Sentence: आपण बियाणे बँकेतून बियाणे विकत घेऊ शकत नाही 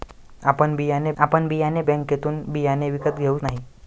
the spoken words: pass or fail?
fail